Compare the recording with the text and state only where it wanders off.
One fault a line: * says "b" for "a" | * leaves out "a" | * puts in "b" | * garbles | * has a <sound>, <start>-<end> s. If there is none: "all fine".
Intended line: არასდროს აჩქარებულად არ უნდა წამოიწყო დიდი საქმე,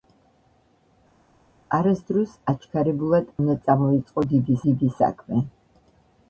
* leaves out "არ"
* puts in "დიდი"